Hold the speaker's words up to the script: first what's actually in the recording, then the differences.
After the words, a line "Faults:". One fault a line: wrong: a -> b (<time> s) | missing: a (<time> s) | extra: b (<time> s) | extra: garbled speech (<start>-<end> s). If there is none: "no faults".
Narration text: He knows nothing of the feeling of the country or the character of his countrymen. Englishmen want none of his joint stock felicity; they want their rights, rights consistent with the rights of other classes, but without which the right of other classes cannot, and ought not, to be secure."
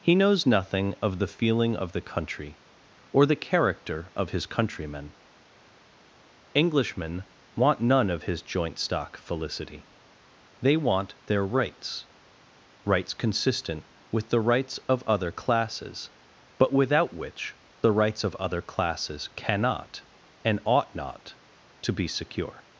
He knows nothing of the feeling of the country or the character of his countrymen. Englishmen want none of his joint stock felicity; they want their rights, rights consistent with the rights of other classes, but without which the rights of other classes cannot, and ought not, to be secure."
Faults:
wrong: right -> rights (17.9 s)